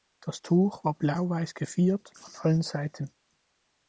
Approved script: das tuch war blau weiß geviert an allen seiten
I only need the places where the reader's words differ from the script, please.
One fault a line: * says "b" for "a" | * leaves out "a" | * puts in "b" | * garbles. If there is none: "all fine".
all fine